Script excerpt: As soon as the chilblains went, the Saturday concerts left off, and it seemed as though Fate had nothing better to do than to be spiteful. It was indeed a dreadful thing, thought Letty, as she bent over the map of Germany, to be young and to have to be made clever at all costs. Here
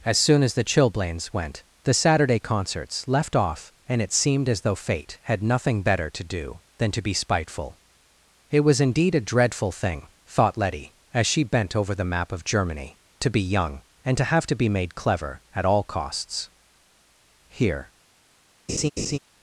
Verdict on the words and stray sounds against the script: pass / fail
fail